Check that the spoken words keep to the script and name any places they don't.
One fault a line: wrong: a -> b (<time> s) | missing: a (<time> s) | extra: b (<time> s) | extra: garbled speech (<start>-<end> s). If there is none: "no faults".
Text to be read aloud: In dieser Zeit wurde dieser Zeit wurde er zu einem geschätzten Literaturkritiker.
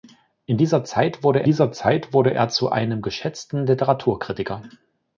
no faults